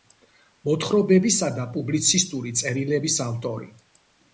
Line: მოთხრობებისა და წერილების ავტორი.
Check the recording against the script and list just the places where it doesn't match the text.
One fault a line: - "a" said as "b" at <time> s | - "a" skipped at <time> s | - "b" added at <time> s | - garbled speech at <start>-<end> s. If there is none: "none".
- "პუბლიცისტური" added at 1.8 s